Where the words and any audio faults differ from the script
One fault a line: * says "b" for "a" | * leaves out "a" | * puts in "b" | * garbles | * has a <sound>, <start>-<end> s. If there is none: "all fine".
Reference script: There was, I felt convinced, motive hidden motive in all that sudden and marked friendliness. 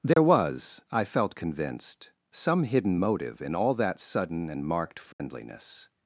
* has a dropout, 0.1-0.2 s
* says "some" for "motive"
* has a dropout, 5.1-5.2 s